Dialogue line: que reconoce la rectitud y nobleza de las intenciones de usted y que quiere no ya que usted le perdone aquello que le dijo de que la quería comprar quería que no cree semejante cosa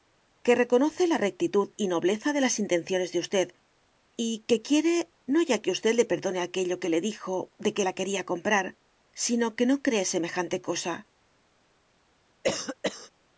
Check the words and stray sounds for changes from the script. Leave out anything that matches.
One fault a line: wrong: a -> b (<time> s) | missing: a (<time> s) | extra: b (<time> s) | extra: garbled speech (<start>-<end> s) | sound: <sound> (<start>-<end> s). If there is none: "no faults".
wrong: quería -> sino (9.1 s)
sound: cough (12.4-13.1 s)